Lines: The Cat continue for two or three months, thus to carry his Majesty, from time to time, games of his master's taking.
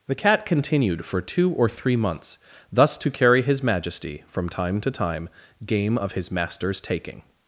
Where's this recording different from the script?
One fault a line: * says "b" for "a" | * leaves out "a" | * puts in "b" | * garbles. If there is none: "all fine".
* says "continued" for "continue"
* says "game" for "games"